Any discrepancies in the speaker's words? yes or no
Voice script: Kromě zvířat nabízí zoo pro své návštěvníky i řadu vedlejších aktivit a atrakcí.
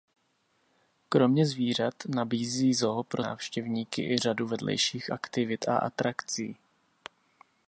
yes